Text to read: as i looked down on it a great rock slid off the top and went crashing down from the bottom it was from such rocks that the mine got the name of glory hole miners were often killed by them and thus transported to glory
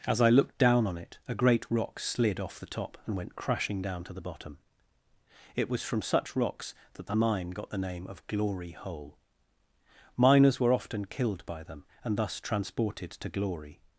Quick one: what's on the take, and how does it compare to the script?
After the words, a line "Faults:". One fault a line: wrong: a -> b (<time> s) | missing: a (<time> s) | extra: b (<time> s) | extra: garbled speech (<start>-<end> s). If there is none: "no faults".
as i looked down on it a great rock slid off the top and went crashing down to the bottom it was from such rocks that the mine got the name of glory hole miners were often killed by them and thus transported to glory
Faults:
wrong: from -> to (4.0 s)